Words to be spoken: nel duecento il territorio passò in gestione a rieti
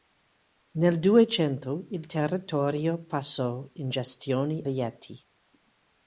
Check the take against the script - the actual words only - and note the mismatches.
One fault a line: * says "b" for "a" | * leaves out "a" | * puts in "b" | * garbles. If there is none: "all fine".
* leaves out "a"